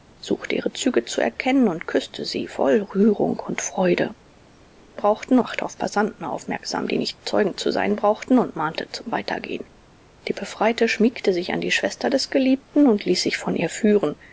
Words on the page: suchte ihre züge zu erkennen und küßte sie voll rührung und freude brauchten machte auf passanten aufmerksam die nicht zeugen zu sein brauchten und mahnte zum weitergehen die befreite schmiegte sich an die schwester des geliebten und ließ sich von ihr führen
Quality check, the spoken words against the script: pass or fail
pass